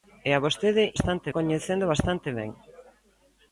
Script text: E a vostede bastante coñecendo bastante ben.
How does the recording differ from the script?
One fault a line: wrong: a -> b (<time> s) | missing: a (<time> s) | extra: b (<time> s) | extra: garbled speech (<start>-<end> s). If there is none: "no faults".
no faults